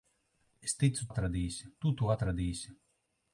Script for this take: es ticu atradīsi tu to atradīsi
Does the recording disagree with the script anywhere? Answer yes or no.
no